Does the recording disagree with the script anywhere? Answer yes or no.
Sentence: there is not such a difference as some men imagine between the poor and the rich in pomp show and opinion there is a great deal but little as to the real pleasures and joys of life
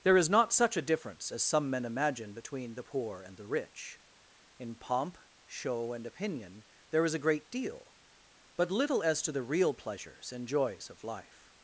no